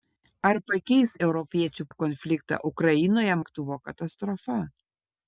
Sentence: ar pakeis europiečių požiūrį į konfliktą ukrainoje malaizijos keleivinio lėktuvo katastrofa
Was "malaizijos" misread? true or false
true